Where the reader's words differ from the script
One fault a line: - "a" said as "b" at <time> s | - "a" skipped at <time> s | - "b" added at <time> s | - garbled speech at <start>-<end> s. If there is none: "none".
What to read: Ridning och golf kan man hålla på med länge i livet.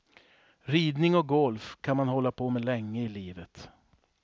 none